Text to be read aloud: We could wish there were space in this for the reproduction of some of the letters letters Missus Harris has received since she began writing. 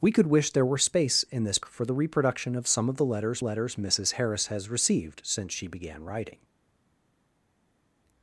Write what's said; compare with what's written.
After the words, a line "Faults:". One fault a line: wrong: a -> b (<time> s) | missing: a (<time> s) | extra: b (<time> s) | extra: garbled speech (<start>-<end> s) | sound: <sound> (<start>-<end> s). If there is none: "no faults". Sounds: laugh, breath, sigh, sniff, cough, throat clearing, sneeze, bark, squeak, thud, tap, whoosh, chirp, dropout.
We could wish there were space in this for the reproduction of some of the letters letters Missus Harris has received since she began writing.
Faults:
no faults